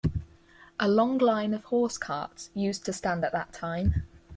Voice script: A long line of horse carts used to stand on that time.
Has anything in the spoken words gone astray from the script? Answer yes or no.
yes